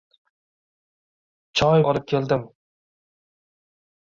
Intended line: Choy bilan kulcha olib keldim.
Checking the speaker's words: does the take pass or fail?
fail